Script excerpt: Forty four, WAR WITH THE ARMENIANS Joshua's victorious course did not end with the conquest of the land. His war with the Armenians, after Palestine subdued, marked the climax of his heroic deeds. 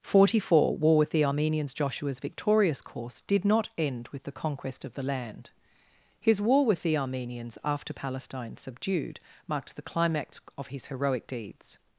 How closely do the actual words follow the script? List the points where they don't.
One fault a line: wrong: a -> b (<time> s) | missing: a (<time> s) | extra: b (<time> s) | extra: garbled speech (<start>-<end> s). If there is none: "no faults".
no faults